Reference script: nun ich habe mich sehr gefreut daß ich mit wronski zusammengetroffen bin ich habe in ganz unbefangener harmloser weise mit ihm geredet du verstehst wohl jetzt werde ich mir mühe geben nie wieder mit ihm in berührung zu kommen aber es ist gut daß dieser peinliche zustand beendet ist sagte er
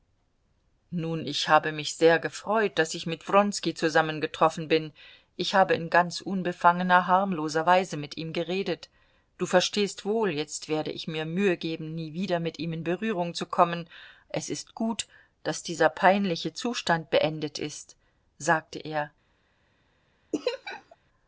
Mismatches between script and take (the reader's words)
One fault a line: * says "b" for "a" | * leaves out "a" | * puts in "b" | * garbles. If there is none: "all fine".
* leaves out "aber"